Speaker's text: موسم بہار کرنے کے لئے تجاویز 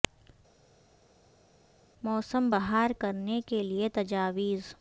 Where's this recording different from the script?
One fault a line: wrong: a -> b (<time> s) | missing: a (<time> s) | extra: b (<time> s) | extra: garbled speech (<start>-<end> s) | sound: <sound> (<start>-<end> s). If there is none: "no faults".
no faults